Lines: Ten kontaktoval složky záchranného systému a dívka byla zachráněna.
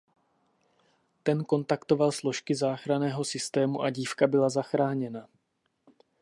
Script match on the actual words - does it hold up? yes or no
yes